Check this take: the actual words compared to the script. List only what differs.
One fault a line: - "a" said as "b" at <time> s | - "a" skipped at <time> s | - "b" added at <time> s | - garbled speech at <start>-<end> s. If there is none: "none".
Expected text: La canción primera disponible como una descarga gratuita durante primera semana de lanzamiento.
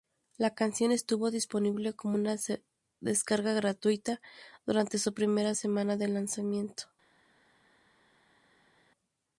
- "primera" said as "estuvo" at 0.9 s
- "su" added at 5.0 s